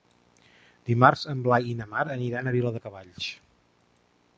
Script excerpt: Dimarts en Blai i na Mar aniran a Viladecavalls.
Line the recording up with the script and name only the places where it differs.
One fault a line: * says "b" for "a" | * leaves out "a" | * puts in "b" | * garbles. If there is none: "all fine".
all fine